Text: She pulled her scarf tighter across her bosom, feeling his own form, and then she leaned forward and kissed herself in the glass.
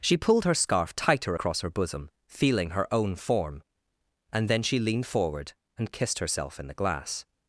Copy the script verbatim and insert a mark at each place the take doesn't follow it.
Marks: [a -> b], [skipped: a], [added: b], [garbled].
She pulled her scarf tighter across her bosom, feeling [his -> her] own form, and then she leaned forward and kissed herself in the glass.